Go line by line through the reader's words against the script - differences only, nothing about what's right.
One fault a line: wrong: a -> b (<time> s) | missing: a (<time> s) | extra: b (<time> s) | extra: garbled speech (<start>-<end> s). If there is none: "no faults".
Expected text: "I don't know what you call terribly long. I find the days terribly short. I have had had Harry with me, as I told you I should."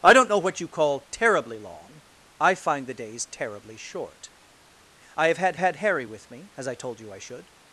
no faults